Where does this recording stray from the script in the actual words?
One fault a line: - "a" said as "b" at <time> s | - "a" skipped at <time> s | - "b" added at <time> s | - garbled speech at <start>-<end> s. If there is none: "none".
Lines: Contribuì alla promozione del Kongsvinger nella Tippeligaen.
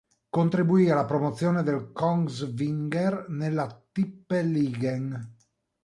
none